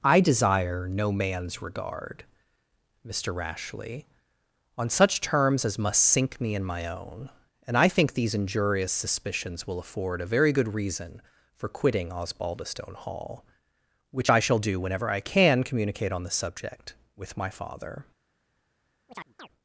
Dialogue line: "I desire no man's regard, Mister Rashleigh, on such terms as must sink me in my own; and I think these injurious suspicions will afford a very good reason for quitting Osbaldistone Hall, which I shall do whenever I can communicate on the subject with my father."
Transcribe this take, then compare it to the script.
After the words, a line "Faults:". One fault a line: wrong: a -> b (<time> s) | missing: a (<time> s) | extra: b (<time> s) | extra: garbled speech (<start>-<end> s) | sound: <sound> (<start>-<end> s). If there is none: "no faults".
"I desire no man's regard, Mister Rashleigh, on such terms as must sink me in my own; and I think these injurious suspicions will afford a very good reason for quitting Osbaldistone Hall, which I shall do whenever I can communicate on the subject with my father."
Faults:
sound: chirp (19.1-19.5 s)